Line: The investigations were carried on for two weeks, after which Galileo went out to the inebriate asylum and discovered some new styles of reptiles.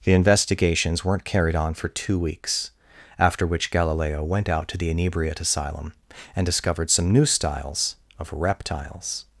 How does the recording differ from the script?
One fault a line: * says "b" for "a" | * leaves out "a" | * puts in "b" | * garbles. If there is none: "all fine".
* says "weren't" for "were"